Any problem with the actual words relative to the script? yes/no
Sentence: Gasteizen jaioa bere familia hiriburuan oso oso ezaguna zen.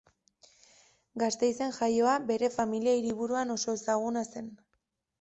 yes